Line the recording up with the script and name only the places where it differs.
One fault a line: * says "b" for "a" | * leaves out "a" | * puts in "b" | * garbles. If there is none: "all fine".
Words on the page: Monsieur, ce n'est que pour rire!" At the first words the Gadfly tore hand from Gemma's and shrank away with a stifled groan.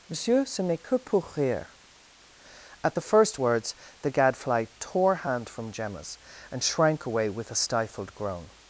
all fine